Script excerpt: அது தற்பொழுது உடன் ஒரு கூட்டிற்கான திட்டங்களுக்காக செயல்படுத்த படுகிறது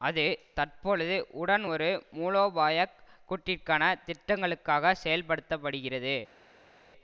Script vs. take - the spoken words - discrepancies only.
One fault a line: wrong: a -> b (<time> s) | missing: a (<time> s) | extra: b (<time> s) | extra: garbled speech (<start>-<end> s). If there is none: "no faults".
extra: மூலோபாய (2.1 s)